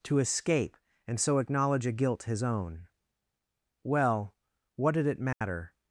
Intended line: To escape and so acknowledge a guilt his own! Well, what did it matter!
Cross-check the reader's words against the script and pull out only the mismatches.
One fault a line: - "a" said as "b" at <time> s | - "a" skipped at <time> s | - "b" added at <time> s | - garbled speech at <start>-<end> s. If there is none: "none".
none